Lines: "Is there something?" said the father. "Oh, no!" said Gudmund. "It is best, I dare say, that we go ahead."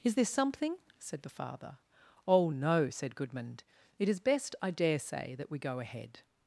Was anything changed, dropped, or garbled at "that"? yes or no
no